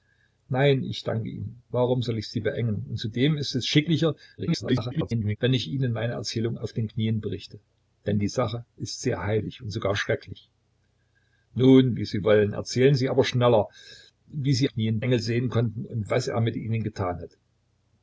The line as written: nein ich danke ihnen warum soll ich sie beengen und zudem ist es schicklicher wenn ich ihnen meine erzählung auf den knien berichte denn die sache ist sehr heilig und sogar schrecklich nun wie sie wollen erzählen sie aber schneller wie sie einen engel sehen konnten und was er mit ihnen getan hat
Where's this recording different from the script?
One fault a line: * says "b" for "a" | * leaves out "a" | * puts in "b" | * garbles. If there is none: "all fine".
* garbles
* says "knien" for "einen"